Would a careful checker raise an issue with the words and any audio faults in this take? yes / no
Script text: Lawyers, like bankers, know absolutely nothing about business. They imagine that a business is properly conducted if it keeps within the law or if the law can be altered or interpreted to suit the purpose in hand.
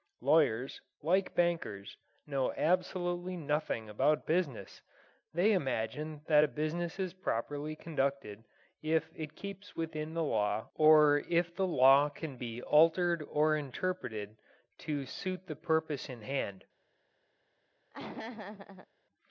yes